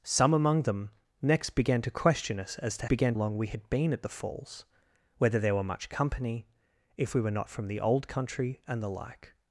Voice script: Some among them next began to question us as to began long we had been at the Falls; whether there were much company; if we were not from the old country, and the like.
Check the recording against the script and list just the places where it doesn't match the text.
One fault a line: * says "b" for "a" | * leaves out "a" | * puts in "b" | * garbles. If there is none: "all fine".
all fine